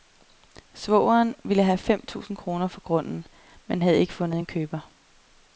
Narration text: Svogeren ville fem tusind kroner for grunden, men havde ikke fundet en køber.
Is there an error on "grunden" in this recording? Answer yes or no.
no